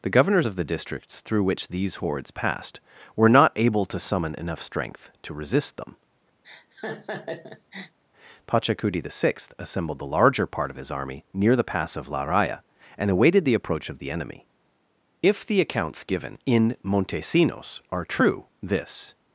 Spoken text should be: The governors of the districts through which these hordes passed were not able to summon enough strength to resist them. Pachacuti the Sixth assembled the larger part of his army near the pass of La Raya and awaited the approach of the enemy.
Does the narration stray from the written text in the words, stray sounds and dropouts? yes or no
yes